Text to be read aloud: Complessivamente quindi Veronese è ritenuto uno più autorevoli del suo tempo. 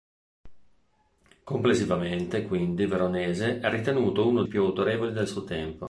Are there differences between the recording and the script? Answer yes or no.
no